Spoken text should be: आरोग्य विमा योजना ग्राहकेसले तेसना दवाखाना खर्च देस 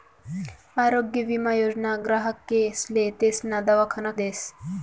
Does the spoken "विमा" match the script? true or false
true